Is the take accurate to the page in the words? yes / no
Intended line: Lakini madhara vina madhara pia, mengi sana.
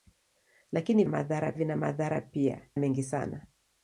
yes